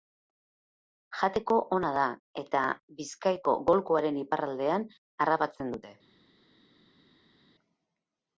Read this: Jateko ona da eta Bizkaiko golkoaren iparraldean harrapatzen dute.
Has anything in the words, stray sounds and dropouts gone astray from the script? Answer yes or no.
no